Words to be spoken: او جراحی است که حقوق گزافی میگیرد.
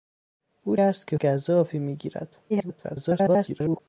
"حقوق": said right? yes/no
no